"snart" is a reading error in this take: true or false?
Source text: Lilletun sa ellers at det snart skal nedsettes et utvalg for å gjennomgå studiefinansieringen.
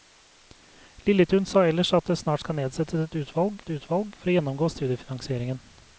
false